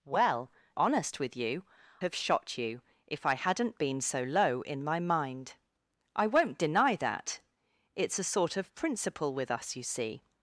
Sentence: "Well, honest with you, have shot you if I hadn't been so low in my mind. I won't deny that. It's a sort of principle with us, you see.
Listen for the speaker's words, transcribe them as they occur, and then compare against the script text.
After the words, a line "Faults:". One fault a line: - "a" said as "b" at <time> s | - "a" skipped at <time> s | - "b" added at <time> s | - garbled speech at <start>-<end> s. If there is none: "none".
"Well, honest with you, have shot you if I hadn't been so low in my mind. I won't deny that. It's a sort of principle with us, you see.
Faults:
none